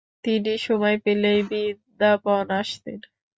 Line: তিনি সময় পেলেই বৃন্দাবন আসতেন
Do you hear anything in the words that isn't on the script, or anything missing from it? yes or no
no